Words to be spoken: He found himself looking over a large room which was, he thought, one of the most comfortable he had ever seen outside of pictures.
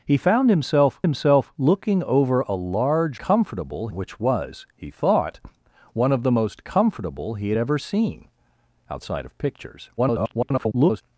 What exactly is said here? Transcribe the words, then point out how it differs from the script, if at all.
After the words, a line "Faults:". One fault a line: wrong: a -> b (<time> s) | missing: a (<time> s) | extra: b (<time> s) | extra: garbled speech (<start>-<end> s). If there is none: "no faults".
He found himself himself looking over a large comfortable which was, he thought, one of the most comfortable he had ever seen outside of pictures. [garbled]
Faults:
extra: himself (1.0 s)
wrong: room -> comfortable (3.2 s)
extra: garbled speech (10.0-11.0 s)